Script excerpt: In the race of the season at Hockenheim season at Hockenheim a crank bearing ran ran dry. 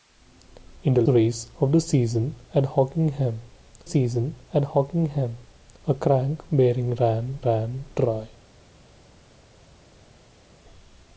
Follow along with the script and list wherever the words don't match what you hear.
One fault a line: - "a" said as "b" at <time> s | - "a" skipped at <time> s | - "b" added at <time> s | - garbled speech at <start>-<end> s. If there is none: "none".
none